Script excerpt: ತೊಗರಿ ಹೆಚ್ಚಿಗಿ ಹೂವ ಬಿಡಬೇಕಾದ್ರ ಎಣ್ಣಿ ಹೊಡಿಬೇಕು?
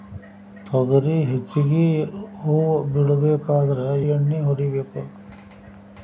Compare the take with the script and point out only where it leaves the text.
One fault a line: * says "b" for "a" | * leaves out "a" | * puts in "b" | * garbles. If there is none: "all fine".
all fine